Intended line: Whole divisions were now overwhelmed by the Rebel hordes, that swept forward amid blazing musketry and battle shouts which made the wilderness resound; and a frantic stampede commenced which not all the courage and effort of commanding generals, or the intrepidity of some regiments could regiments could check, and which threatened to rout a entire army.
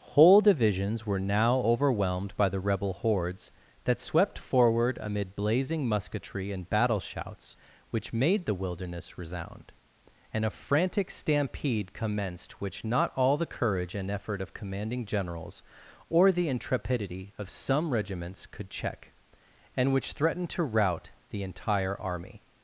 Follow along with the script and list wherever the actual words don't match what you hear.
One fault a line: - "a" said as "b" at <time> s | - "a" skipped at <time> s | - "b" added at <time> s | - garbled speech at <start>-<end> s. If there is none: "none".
- "regiments could" skipped at 18.7 s
- "a" said as "the" at 21.3 s